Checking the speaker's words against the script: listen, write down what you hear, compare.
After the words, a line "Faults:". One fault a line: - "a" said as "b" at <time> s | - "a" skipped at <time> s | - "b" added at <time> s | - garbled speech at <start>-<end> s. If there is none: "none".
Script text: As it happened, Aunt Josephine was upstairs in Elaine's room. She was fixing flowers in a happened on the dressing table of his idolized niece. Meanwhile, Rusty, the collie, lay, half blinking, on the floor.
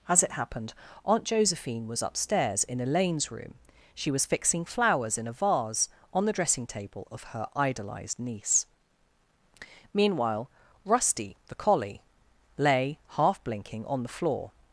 As it happened, Aunt Josephine was upstairs in Elaine's room. She was fixing flowers in a vase on the dressing table of her idolized niece. Meanwhile, Rusty, the collie, lay, half blinking, on the floor.
Faults:
- "happened" said as "vase" at 5.3 s
- "his" said as "her" at 7.2 s